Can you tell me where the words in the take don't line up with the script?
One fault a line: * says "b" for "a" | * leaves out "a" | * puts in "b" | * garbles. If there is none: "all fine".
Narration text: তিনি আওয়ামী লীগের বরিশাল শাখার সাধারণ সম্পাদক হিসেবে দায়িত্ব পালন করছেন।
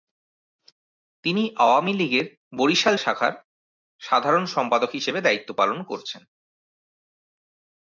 all fine